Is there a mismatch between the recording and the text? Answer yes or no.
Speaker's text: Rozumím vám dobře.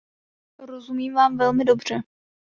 yes